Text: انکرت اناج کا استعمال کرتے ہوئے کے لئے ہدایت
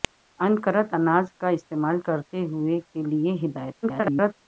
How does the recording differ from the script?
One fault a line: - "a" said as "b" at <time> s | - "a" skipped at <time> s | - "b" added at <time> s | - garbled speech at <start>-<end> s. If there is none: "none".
- garbled speech at 3.8-4.3 s